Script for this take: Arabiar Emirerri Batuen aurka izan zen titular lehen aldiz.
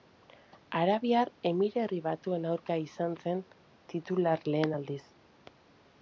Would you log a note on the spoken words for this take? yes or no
no